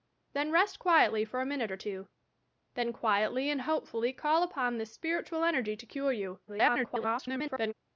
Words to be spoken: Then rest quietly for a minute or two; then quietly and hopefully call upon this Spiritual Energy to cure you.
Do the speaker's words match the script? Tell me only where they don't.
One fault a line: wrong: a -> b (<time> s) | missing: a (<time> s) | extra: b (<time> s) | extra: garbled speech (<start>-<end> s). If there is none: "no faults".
extra: garbled speech (6.5-7.7 s)